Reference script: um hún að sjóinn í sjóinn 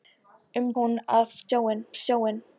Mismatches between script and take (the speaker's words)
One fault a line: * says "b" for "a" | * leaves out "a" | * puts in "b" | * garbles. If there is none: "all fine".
all fine